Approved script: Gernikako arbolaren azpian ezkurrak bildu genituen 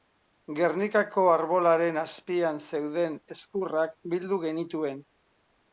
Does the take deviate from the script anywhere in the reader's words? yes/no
yes